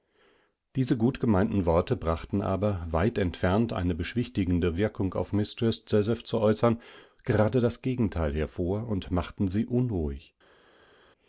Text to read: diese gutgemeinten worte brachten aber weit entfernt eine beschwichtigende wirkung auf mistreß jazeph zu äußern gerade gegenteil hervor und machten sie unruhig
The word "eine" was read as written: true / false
true